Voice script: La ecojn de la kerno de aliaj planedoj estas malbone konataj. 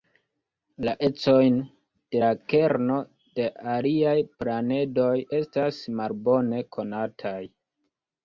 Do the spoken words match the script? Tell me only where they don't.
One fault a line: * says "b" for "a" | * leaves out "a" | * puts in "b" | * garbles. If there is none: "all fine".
all fine